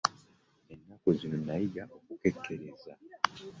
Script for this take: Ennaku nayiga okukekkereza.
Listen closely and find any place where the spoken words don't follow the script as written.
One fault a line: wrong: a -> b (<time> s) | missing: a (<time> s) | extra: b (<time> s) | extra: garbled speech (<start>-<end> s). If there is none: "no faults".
extra: zino (1.2 s)